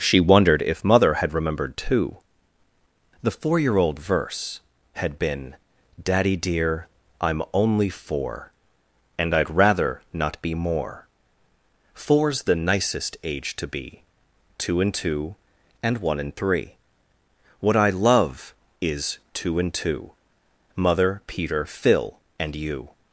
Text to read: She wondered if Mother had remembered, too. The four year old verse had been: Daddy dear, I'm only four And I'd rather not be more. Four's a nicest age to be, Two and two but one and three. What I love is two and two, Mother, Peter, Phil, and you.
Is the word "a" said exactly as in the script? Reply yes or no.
no